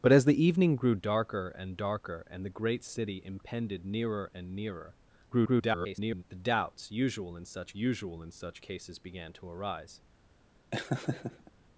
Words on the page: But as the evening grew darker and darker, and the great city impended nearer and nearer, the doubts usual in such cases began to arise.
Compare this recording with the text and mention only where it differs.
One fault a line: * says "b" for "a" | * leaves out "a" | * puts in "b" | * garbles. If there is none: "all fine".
* garbles
* puts in "usual in such"